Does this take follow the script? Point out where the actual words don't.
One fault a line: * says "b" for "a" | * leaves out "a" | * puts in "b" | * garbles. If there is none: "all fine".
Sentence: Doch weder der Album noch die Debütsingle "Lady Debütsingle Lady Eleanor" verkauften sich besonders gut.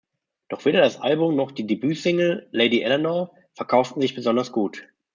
* says "das" for "der"
* leaves out "Debütsingle Lady"